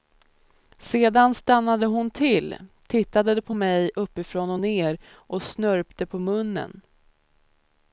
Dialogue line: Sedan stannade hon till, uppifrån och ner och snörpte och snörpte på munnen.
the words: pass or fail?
fail